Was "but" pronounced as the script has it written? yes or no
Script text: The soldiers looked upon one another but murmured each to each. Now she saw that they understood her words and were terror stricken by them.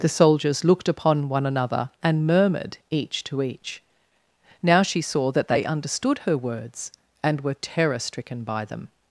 no